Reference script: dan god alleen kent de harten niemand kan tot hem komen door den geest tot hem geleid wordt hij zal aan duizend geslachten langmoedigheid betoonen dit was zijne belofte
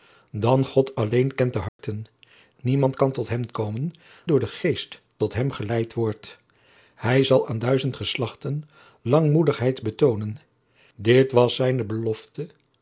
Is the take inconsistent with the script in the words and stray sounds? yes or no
yes